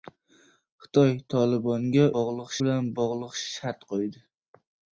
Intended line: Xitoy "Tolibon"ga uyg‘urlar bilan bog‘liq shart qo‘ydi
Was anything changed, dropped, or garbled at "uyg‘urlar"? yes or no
yes